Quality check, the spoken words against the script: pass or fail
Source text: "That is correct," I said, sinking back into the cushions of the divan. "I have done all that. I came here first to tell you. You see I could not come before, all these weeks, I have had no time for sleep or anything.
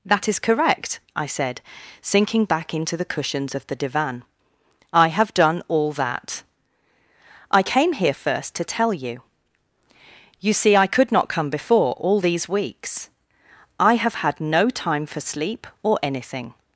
pass